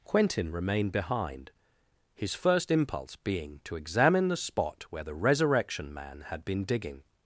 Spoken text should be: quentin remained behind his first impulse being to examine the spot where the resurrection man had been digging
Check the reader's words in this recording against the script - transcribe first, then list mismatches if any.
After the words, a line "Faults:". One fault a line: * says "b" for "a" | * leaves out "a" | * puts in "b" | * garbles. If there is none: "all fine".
quentin remained behind his first impulse being to examine the spot where the resurrection man had been digging
Faults:
all fine